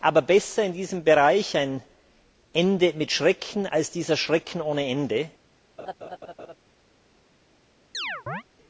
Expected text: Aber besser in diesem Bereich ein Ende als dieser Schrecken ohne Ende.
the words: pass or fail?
fail